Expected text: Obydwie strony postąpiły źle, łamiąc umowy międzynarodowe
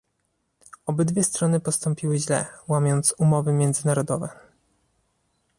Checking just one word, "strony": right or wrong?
right